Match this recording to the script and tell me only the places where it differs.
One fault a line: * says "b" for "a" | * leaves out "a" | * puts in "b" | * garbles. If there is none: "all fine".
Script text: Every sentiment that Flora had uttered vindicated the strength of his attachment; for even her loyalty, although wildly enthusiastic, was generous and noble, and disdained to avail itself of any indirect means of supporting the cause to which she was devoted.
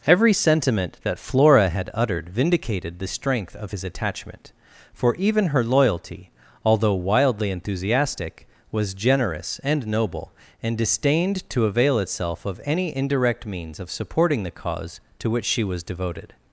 all fine